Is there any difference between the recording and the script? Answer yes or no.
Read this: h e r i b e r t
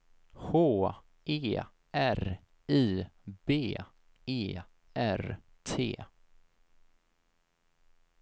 no